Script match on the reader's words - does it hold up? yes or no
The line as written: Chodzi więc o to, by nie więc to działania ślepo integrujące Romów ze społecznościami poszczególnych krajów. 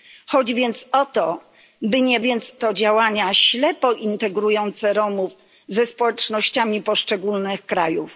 yes